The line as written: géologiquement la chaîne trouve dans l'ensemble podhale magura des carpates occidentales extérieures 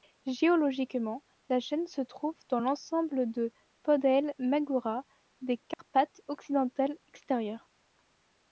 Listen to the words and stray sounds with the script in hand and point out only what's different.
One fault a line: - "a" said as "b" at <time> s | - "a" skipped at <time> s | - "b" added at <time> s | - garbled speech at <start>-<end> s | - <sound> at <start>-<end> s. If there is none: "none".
- "se" added at 1.9 s
- "de" added at 3.3 s
- dropout at 5.7-5.8 s